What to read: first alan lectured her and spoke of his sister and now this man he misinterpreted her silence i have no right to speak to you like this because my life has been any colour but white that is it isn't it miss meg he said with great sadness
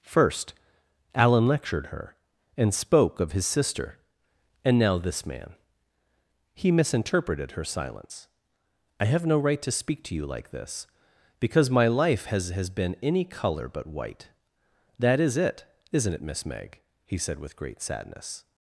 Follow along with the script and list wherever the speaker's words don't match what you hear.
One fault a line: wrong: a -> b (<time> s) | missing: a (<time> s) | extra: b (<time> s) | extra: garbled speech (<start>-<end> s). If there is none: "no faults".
extra: has (12.5 s)